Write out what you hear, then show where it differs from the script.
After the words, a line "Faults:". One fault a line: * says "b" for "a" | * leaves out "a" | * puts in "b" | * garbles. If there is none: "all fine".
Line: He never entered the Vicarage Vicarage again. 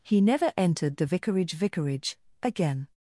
He never entered the Vicarage Vicarage again.
Faults:
all fine